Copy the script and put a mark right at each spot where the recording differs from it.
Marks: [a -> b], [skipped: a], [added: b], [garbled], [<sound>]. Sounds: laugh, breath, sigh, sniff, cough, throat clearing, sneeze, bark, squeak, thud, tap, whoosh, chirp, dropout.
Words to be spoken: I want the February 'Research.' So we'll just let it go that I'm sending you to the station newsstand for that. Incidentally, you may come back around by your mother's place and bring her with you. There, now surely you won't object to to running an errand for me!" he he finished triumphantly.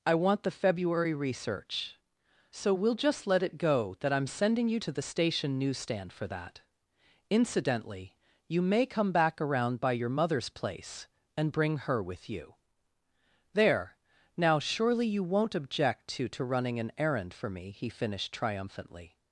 I want the February 'Research.' So we'll just let it go that I'm sending you to the station newsstand for that. Incidentally, you may come back around by your mother's place and bring her with you. There, now surely you won't object to to running an errand for me!" he [skipped: he] finished triumphantly.